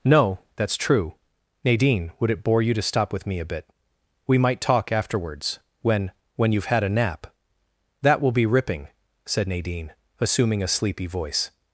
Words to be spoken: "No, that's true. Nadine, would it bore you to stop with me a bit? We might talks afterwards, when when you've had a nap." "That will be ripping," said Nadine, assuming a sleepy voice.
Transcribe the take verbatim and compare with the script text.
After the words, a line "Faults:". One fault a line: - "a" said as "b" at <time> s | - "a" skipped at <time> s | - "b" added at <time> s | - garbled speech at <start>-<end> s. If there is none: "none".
"No, that's true. Nadine, would it bore you to stop with me a bit? We might talk afterwards, when when you've had a nap." "That will be ripping," said Nadine, assuming a sleepy voice.
Faults:
- "talks" said as "talk" at 4.6 s